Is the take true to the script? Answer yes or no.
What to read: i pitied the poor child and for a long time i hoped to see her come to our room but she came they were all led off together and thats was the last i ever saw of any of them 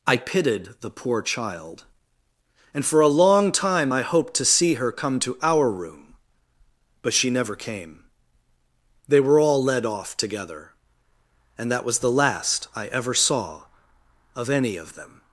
no